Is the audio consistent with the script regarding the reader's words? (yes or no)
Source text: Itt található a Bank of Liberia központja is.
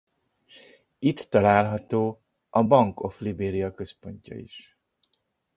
yes